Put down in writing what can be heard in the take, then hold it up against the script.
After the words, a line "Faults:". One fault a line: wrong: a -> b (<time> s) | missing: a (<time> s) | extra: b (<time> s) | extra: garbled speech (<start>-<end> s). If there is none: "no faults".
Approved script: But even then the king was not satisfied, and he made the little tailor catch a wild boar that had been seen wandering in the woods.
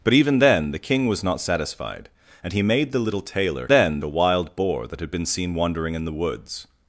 But even then the king was not satisfied, and he made the little tailor then a wild boar that had been seen wandering in the woods.
Faults:
wrong: catch -> then (3.7 s)